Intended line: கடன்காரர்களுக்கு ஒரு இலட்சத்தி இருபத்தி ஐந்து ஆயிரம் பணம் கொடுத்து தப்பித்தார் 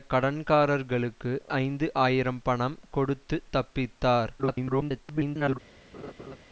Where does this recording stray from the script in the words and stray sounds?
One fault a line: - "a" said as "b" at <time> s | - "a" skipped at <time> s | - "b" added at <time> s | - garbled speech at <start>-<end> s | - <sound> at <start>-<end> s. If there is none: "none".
- "ஒரு இலட்சத்தி இருபத்தி" skipped at 1.3 s
- garbled speech at 4.4-5.6 s
- laugh at 5.9-6.4 s